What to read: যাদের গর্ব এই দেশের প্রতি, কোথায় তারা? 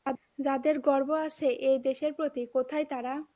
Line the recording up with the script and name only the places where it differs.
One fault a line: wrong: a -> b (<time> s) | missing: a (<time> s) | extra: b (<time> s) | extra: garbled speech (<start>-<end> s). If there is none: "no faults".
extra: আছে (1.3 s)